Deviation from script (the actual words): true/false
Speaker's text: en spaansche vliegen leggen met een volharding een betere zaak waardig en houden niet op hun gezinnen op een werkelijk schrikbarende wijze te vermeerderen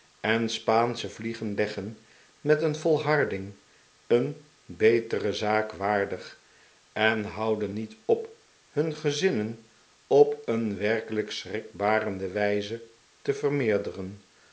false